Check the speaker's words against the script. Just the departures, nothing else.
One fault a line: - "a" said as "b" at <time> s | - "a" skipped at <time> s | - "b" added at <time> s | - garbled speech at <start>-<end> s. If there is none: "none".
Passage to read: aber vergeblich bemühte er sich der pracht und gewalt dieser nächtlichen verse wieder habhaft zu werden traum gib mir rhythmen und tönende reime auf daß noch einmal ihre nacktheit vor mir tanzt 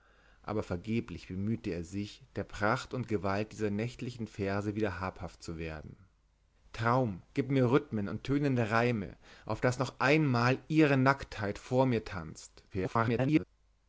- garbled speech at 12.7-13.4 s